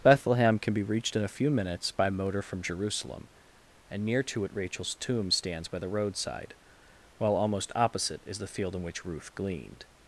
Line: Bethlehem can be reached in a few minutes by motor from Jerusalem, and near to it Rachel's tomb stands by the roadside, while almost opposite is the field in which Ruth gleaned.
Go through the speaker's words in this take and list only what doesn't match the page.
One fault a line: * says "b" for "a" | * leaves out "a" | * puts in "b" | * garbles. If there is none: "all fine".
all fine